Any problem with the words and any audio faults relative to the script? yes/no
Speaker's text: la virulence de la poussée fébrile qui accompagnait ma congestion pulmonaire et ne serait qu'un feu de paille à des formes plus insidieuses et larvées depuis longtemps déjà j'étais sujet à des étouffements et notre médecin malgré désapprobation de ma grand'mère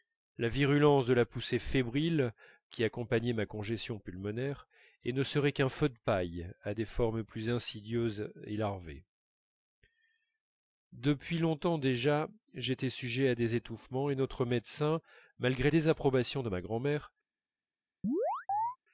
yes